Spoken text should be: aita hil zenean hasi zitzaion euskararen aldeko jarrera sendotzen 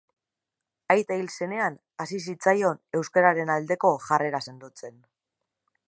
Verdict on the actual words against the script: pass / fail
pass